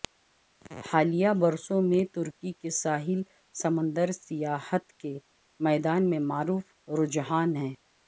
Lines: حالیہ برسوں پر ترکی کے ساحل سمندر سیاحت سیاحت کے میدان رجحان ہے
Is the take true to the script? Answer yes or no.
no